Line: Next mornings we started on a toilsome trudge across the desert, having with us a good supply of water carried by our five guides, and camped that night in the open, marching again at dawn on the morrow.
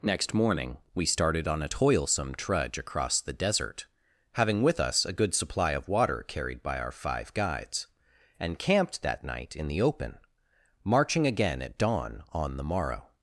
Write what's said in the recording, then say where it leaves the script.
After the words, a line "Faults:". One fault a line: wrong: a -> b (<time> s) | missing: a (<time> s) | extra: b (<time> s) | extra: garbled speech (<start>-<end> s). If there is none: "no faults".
Next morning we started on a toilsome trudge across the desert, having with us a good supply of water carried by our five guides, and camped that night in the open, marching again at dawn on the morrow.
Faults:
wrong: mornings -> morning (0.3 s)